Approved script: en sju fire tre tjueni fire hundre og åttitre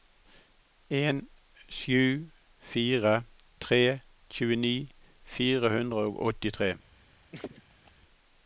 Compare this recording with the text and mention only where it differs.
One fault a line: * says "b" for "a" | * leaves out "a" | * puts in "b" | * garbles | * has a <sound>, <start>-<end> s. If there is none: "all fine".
* has a laugh, 7.3-7.9 s